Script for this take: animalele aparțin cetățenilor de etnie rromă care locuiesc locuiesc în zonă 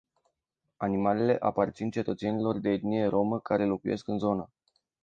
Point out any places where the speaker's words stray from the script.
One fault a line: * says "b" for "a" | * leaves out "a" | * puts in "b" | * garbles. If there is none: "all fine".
* leaves out "locuiesc"